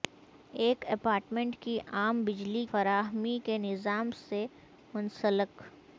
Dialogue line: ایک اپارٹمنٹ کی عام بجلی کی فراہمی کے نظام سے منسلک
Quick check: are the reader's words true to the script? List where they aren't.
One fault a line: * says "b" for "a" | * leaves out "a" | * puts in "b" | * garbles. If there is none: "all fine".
* leaves out "کی"